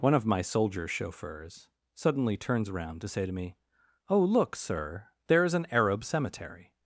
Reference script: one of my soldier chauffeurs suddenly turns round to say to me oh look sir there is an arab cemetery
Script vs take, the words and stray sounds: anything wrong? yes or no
yes